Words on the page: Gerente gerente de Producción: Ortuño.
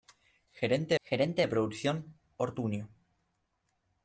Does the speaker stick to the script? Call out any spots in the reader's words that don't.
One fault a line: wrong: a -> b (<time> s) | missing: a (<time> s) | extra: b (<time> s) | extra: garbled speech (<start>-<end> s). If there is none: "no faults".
no faults